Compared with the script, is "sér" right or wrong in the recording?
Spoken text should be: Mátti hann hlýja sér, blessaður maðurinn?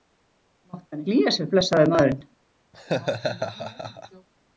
right